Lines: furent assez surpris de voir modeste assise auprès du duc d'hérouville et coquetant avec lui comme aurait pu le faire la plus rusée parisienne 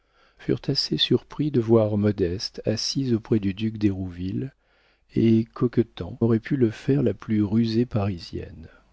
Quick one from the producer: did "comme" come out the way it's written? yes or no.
no